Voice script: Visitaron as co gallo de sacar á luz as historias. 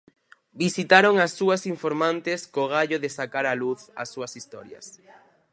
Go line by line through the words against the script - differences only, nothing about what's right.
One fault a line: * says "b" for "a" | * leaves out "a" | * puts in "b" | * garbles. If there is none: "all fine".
* puts in "súas informantes"
* puts in "súas"